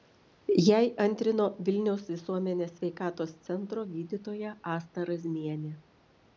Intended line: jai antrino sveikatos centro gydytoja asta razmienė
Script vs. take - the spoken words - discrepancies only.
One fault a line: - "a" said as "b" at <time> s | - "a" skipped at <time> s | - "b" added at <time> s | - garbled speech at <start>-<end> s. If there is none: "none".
- "vilniaus visuomenės" added at 1.7 s